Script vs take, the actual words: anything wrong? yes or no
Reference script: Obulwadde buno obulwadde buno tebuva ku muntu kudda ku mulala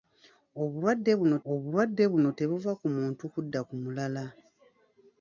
no